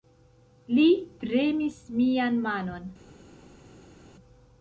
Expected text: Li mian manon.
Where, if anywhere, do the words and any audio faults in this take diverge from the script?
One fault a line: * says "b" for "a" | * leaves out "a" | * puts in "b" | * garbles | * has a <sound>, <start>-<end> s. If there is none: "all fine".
* puts in "premis"